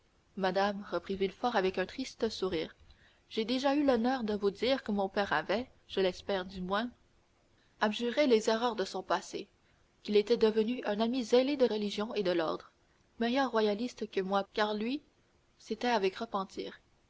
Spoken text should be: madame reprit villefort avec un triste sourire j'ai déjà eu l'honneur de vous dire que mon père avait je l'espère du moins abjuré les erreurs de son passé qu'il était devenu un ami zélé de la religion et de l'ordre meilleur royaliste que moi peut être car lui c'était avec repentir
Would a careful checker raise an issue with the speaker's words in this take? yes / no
yes